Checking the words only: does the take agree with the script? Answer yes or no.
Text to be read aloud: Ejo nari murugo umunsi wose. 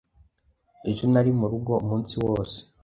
yes